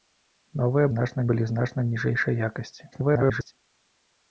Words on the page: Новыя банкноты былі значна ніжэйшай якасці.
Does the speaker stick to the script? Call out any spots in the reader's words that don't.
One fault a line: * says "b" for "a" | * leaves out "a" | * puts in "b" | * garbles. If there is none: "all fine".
* says "значна" for "банкноты"
* garbles